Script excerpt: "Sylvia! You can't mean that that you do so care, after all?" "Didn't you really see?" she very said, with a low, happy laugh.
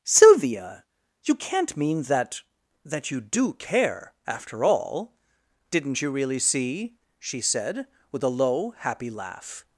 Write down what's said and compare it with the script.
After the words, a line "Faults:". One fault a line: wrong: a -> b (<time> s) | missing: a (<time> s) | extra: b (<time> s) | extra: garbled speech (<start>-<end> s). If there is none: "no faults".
"Sylvia! You can't mean that that you do care, after all?" "Didn't you really see?" she said, with a low, happy laugh.
Faults:
missing: so (3.5 s)
missing: very (7.4 s)